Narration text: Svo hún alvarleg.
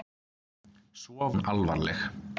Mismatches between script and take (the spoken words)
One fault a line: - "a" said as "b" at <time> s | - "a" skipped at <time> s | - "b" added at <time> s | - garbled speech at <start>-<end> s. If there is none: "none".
none